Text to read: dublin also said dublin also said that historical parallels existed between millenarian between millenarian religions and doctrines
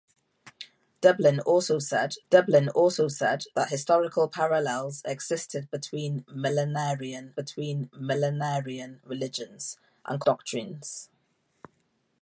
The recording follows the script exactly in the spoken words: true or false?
true